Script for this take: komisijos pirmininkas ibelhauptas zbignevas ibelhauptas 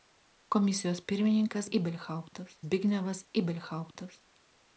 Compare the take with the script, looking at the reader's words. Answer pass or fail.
pass